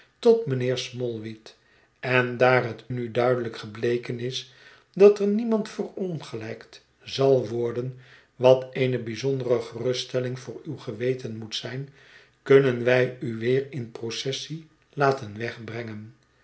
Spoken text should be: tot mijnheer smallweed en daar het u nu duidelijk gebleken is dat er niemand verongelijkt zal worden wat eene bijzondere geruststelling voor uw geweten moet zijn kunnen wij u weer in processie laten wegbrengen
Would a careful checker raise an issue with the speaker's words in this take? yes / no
yes